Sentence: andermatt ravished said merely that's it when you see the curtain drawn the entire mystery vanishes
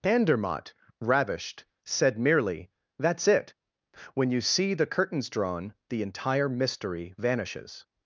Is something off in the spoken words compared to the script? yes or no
yes